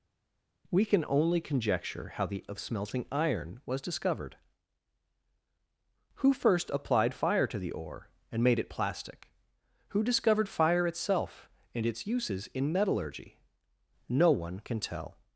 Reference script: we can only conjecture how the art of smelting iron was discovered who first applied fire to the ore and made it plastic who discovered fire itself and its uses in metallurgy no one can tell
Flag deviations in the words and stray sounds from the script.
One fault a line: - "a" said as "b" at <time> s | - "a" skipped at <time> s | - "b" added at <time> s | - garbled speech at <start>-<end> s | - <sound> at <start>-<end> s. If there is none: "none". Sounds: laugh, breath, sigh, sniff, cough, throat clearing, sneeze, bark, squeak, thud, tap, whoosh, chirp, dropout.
- "art" skipped at 2.4 s